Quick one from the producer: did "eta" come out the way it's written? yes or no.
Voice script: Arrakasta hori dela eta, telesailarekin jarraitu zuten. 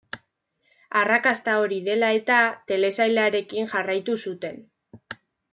yes